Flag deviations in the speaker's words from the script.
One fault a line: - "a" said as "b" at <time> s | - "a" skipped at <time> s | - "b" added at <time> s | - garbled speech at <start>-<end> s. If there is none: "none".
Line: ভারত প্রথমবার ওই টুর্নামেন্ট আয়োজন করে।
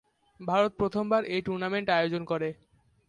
- "ওই" said as "এই" at 1.2 s